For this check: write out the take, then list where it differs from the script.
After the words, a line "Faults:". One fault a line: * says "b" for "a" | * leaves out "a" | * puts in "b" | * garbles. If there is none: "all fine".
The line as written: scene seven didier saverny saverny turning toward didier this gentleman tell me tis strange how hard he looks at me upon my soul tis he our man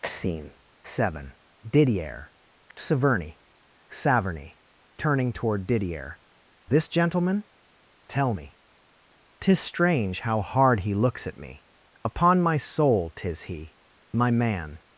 scene seven didier saverny saverny turning toward didier this gentleman tell me tis strange how hard he looks at me upon my soul tis he my man
Faults:
* says "my" for "our"